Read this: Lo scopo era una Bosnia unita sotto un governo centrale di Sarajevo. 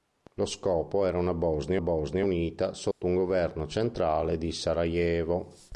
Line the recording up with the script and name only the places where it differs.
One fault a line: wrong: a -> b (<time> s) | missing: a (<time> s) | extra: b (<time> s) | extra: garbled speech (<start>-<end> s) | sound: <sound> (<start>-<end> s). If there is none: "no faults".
extra: Bosnia (1.8 s)
sound: dropout (2.9-3.0 s)